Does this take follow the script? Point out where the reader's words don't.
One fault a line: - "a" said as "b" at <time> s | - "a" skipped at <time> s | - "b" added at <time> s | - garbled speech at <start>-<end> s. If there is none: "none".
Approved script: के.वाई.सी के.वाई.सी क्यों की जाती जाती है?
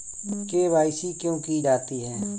- "के.वाई.सी" skipped at 1.1 s
- "जाती" skipped at 2.0 s